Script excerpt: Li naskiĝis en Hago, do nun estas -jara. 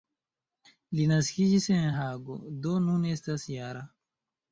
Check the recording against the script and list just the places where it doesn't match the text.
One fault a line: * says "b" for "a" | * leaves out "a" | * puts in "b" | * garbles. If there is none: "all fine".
all fine